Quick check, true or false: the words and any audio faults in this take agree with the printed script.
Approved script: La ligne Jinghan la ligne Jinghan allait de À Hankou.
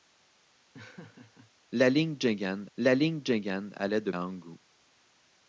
false